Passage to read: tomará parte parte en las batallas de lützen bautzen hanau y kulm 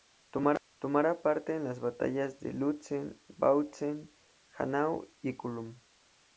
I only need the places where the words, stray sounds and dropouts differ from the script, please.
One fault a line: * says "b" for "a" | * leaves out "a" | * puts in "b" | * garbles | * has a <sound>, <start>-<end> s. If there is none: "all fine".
* leaves out "parte"